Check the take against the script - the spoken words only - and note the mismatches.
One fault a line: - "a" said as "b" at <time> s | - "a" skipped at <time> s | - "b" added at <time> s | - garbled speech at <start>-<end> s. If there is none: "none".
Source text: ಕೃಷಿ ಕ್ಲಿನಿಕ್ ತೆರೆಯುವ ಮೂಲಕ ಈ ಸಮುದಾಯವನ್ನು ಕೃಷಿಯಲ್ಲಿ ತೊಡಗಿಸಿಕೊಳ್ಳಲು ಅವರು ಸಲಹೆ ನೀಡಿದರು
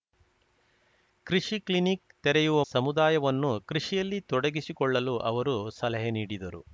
- "ಮೂಲಕ ಈ" skipped at 2.6 s